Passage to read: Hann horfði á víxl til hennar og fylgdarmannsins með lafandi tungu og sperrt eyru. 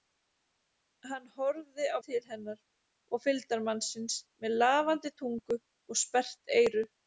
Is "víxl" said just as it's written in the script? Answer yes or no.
no